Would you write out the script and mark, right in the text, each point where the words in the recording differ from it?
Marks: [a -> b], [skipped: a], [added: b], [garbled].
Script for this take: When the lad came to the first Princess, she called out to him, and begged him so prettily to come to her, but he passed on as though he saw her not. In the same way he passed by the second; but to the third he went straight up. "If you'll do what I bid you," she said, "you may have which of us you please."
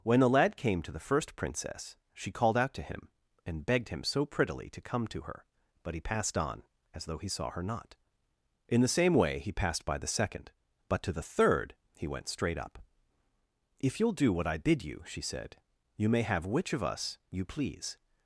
When the lad came to the first Princess, she called out to him, and begged him so prettily to come to her, but he passed on as though he saw her not. In the same way he passed by the second; but to the third he went straight up. "If you'll do what I bid you," she said, "you may have which of us you please."